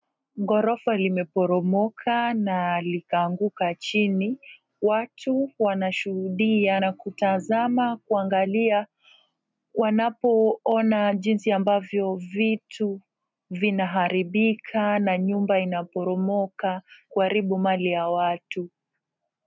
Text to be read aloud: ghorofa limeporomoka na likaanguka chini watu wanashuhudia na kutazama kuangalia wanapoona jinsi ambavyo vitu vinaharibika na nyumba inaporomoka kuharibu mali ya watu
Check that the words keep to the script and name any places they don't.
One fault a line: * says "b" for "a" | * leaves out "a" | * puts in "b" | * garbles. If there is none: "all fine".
all fine